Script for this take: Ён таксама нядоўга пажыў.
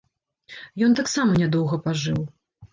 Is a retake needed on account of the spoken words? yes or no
no